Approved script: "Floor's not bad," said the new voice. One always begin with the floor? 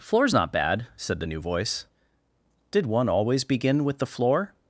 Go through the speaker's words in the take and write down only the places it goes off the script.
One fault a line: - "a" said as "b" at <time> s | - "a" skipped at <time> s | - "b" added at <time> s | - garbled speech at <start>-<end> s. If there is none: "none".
- "Did" added at 2.7 s